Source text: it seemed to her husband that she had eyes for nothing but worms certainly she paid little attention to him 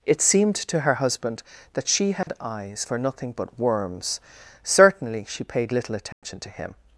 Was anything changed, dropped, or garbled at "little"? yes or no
no